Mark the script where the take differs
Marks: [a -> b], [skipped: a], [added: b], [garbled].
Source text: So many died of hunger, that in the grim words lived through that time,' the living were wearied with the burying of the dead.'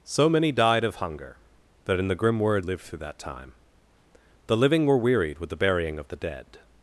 So many died of hunger, that in the grim words lived through that time,' the living were wearied with the burying of the dead.'